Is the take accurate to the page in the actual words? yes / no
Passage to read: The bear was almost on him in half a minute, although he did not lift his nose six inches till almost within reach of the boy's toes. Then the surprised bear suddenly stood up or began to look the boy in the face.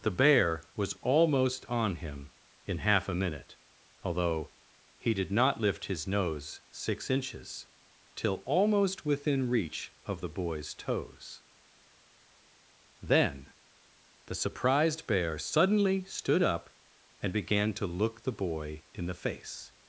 no